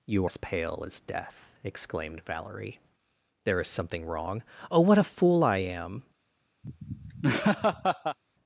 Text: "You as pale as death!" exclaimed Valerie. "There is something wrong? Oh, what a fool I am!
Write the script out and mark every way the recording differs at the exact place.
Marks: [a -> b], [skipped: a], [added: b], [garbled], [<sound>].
"You as pale as death!" exclaimed Valerie. "There is something wrong? Oh, what a fool I am! [laugh]